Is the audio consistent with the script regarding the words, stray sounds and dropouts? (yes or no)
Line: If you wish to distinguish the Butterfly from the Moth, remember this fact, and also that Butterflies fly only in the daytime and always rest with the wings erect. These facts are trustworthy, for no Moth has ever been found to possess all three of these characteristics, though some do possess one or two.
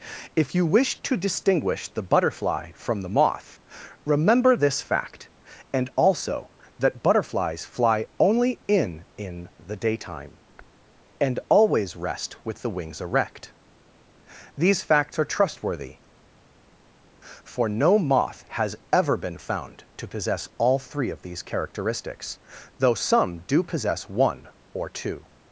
no